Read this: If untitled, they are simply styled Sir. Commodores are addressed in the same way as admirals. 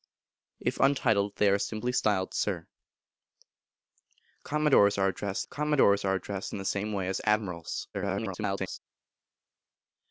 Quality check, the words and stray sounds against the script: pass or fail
fail